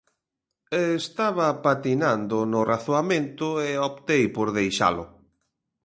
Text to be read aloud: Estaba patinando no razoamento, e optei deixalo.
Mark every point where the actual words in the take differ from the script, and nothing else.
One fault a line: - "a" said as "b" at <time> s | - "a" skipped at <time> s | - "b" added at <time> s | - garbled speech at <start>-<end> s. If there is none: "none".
- "por" added at 4.4 s